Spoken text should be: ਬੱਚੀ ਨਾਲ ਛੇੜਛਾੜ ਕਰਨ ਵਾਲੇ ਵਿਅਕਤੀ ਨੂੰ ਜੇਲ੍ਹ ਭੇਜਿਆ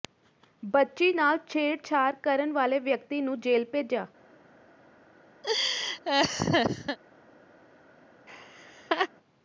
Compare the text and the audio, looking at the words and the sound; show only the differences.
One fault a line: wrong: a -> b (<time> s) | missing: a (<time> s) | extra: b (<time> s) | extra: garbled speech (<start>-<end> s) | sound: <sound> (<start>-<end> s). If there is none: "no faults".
sound: laugh (5.4-7.0 s)
sound: laugh (8.3-9.1 s)